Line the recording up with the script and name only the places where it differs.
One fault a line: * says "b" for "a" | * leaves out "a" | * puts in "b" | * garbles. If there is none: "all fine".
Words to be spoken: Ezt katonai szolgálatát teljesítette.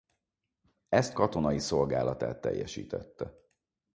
all fine